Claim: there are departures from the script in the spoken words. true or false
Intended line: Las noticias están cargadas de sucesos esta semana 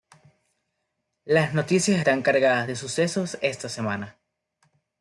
false